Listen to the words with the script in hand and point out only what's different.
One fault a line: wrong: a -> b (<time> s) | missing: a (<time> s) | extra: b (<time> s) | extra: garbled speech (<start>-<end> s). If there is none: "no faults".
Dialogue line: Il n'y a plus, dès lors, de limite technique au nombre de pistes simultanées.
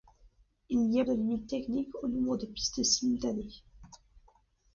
missing: plus dès lors (1.1 s)